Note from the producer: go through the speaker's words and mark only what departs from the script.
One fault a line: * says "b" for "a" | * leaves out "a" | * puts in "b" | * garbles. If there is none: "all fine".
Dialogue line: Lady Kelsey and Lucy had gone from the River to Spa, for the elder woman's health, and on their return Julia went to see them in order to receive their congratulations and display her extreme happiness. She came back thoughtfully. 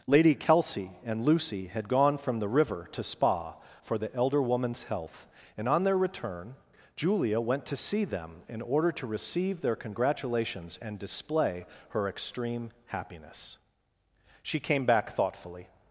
all fine